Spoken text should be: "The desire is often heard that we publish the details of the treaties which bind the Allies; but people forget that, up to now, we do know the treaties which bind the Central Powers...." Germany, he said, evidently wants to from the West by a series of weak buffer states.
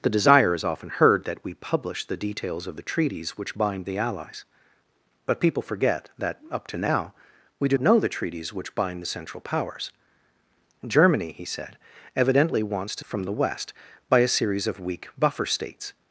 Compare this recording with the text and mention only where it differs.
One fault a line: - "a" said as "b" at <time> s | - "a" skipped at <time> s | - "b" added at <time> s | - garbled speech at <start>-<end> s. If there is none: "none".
none